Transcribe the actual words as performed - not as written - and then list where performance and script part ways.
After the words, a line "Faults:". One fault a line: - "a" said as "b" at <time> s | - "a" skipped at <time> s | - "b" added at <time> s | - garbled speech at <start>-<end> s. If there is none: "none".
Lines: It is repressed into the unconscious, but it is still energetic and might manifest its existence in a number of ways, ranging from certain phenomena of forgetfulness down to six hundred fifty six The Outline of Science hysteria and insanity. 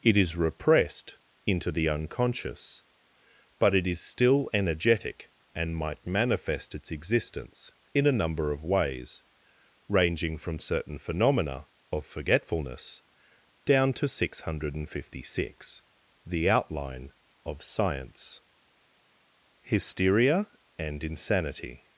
It is repressed into the unconscious, but it is still energetic and might manifest its existence in a number of ways, ranging from certain phenomena of forgetfulness down to six hundred fifty six The Outline of Science hysteria and insanity.
Faults:
none